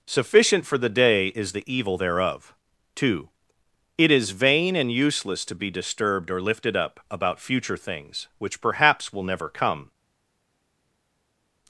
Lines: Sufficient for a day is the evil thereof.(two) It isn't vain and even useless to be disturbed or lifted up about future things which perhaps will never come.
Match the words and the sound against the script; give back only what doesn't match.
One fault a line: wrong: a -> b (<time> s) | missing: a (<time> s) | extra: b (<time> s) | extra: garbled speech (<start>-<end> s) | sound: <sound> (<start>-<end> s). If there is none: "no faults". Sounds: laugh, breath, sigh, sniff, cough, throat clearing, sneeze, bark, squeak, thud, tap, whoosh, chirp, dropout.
wrong: a -> the (0.8 s)
wrong: isn't -> is (4.1 s)
missing: even (4.9 s)